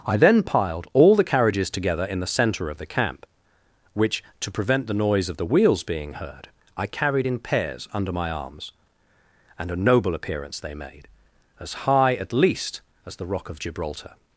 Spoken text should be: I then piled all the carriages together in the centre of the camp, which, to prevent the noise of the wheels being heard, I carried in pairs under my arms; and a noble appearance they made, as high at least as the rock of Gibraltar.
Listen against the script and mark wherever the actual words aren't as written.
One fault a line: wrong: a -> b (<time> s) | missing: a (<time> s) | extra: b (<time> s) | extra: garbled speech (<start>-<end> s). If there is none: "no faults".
no faults